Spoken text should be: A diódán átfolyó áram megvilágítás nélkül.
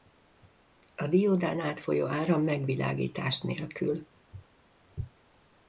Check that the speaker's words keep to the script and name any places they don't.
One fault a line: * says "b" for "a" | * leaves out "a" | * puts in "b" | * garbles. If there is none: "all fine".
all fine